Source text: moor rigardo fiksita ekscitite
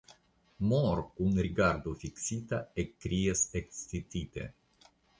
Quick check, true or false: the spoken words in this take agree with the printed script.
false